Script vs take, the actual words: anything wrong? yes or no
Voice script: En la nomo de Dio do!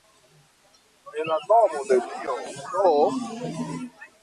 no